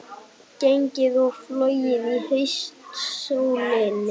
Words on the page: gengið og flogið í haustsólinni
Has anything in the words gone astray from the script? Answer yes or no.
no